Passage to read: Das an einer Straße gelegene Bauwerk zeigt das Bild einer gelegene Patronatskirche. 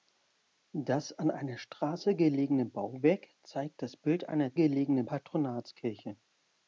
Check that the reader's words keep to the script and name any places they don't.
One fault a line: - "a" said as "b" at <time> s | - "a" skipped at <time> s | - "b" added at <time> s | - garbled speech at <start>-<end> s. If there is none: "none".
none